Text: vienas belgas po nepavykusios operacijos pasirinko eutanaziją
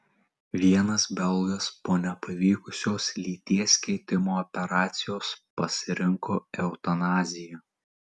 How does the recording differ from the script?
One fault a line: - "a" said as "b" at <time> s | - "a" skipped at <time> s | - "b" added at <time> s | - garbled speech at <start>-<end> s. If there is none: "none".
- "lyties keitimo" added at 3.2 s